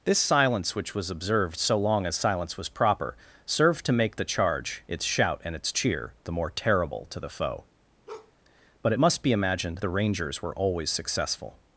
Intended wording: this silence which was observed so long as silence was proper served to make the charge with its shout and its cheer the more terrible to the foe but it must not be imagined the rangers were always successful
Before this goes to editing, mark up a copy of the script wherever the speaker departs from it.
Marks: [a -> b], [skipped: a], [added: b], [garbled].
this silence which was observed so long as silence was proper served to make the charge [skipped: with] its shout and its cheer the more terrible to the foe but it must [skipped: not] be imagined the rangers were always successful